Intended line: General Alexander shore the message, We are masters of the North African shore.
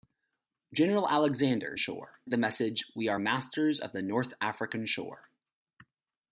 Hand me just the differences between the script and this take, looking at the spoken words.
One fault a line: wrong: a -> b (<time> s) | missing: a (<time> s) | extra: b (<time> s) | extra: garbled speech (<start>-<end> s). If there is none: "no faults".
no faults